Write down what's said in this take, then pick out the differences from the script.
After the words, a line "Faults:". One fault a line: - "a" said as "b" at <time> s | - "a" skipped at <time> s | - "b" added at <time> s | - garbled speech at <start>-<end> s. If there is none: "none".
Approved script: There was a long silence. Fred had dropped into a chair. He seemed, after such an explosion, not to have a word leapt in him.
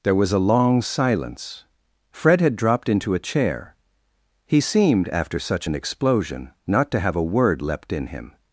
There was a long silence. Fred had dropped into a chair. He seemed, after such an explosion, not to have a word leapt in him.
Faults:
none